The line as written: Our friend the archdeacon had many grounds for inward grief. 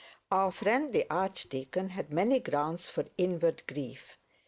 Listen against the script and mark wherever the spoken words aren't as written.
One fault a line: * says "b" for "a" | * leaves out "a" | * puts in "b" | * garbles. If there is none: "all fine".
all fine